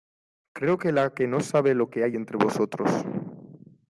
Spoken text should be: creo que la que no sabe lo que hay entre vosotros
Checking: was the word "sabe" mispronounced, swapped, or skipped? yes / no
no